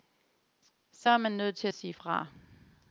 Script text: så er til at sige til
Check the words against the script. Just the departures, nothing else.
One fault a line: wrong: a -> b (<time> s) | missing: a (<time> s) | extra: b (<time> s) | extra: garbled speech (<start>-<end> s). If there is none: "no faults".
extra: man nødt (1.2 s)
wrong: til -> fra (1.9 s)